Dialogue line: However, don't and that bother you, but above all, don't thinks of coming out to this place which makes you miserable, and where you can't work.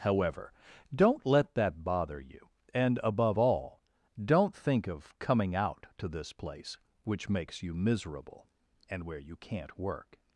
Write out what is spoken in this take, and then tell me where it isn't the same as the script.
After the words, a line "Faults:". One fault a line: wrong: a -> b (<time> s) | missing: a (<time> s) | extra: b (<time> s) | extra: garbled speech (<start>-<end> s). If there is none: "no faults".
However, don't let that bother you, and above all, don't think of coming out to this place which makes you miserable, and where you can't work.
Faults:
wrong: and -> let (1.3 s)
wrong: but -> and (2.7 s)
wrong: thinks -> think (4.5 s)